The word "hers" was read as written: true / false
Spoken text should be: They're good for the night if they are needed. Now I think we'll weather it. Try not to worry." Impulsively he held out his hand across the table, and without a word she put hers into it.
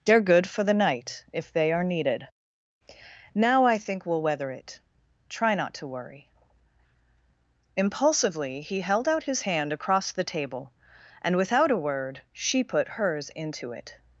true